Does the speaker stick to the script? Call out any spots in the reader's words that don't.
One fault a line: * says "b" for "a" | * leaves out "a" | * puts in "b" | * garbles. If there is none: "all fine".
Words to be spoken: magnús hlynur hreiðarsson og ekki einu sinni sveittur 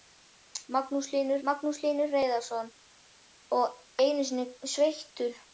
* puts in "magnús hlynur"
* leaves out "ekki"